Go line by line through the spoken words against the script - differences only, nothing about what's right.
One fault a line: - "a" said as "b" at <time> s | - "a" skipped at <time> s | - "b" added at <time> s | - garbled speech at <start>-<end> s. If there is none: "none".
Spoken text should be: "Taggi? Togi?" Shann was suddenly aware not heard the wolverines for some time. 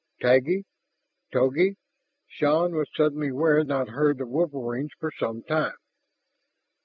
none